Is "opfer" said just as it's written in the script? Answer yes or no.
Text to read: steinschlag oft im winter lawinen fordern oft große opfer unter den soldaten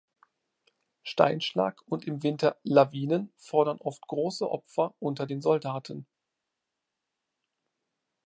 yes